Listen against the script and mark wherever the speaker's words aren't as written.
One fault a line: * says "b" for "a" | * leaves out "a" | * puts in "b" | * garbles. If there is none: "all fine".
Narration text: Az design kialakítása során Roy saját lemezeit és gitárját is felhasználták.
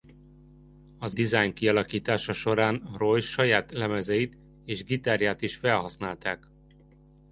all fine